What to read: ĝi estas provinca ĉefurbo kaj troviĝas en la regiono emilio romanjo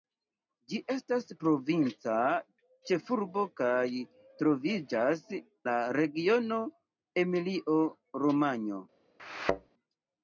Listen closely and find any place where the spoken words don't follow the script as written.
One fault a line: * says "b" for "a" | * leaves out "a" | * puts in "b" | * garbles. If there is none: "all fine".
* leaves out "en"